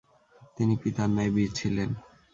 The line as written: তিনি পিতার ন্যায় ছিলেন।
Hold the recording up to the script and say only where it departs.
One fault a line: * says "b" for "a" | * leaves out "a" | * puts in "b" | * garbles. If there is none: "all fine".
* puts in "বীর"